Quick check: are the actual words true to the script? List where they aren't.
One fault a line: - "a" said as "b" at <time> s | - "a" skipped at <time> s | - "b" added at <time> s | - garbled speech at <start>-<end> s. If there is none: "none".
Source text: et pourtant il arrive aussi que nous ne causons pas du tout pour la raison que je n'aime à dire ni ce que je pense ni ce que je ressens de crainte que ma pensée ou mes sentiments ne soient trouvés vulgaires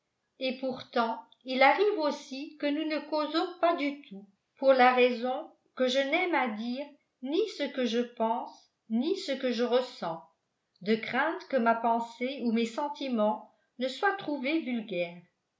none